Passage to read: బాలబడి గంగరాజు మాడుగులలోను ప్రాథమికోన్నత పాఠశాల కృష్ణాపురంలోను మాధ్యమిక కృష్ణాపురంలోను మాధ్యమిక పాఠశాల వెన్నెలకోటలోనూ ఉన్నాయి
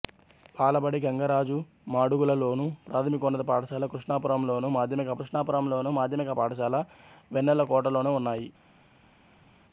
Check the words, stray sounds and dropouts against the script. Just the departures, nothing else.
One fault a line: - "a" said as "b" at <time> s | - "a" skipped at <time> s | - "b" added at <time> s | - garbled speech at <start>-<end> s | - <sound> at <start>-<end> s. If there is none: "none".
none